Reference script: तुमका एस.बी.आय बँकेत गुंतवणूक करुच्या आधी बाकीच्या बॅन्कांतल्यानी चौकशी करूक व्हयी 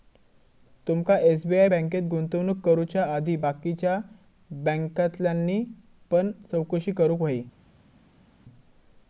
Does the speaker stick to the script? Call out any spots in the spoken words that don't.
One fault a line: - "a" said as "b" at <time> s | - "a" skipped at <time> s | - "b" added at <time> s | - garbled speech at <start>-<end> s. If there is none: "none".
- "पण" added at 6.1 s